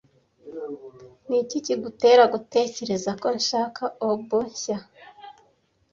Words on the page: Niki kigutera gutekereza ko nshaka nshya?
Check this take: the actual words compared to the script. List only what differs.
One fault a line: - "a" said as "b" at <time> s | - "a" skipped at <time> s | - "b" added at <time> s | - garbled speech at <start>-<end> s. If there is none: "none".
- "oboe" added at 4.1 s